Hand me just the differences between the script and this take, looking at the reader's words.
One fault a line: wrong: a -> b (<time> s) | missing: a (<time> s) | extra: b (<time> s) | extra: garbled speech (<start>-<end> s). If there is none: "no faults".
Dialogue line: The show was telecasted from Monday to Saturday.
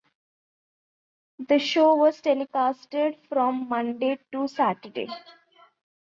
no faults